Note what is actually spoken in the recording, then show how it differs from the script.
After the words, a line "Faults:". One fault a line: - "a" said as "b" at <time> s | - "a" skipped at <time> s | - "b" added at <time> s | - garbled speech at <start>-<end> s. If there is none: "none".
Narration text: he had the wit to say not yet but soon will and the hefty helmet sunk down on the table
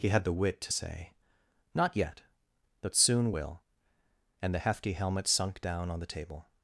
he had the wit to say not yet but soon will and the hefty helmet sunk down on the table
Faults:
none